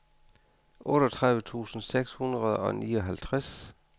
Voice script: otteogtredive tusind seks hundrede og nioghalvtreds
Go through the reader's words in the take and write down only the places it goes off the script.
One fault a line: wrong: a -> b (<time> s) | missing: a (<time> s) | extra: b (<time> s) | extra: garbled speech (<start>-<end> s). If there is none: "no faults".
no faults